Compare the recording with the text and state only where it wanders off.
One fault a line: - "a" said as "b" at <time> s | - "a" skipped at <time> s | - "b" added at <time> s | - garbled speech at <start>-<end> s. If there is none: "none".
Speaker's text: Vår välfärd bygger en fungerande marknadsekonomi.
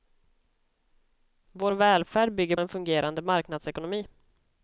none